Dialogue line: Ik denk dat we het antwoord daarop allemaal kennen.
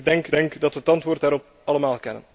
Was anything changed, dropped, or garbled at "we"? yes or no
no